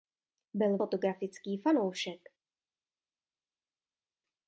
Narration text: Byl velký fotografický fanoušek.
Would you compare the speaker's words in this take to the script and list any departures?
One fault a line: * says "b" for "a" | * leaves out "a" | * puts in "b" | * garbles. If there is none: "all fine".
* leaves out "velký"